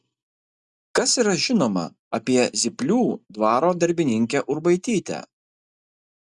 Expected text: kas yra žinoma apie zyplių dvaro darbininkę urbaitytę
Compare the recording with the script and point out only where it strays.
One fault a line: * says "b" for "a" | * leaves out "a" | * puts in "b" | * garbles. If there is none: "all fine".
all fine